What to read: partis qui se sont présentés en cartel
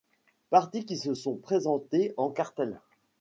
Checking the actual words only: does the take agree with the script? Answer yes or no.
yes